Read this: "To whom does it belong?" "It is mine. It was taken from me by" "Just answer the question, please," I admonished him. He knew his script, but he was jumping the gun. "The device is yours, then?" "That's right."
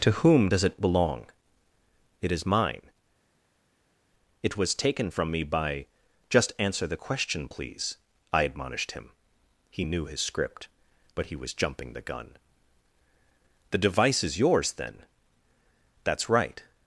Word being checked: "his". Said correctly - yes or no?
yes